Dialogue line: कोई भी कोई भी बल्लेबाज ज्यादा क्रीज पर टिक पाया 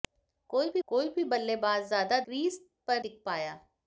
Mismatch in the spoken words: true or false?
false